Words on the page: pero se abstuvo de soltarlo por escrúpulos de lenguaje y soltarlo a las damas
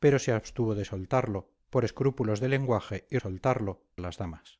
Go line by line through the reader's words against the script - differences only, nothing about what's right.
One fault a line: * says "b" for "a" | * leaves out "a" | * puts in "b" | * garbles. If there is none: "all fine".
all fine